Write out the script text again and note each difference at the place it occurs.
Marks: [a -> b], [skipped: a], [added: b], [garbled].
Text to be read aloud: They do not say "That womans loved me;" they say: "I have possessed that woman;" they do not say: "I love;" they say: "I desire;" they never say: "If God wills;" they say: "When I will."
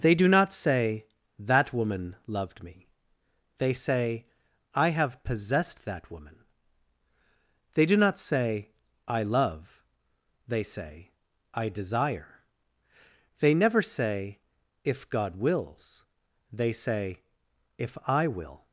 They do not say "That [womans -> woman] loved me;" they say: "I have possessed that woman;" they do not say: "I love;" they say: "I desire;" they never say: "If God wills;" they say: ["When -> If] I will."